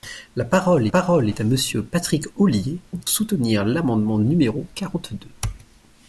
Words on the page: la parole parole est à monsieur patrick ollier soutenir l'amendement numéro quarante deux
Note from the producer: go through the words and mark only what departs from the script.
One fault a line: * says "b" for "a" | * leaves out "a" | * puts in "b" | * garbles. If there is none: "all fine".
all fine